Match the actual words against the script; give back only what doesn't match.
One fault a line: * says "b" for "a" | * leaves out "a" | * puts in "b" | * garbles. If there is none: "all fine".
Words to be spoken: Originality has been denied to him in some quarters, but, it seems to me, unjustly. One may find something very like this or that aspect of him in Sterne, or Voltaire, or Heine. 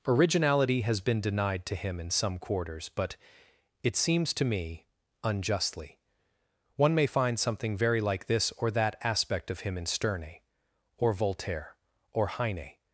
all fine